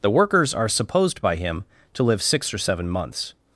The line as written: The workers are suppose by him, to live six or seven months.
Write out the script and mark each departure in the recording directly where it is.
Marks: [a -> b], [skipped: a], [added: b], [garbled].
The workers are [suppose -> supposed] by him, to live six or seven months.